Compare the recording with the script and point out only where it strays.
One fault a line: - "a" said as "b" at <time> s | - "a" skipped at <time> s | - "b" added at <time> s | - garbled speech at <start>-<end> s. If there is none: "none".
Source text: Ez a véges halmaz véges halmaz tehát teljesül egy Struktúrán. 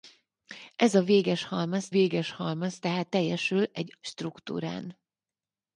none